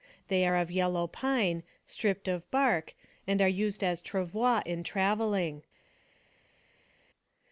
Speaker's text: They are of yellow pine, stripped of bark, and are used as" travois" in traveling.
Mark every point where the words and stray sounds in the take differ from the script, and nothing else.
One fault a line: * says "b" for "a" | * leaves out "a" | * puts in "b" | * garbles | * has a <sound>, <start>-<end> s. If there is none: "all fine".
all fine